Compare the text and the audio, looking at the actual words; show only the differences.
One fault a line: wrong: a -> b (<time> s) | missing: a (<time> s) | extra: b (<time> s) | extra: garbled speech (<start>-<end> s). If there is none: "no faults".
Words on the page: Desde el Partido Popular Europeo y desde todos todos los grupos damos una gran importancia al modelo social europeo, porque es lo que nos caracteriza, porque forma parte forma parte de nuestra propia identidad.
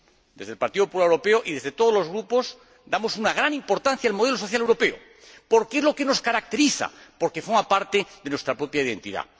missing: todos (1.9 s)
missing: forma parte (8.1 s)